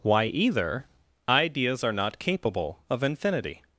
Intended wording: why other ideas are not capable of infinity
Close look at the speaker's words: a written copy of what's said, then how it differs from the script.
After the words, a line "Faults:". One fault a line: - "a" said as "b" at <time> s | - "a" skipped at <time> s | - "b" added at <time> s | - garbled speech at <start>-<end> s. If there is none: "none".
why either ideas are not capable of infinity
Faults:
- "other" said as "either" at 0.2 s